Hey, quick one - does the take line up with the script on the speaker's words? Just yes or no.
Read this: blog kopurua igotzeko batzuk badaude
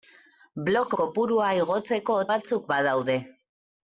yes